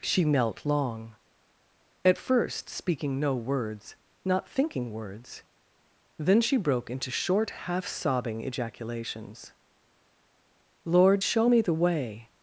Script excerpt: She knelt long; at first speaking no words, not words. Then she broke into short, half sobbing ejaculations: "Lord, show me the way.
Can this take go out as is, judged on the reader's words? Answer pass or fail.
fail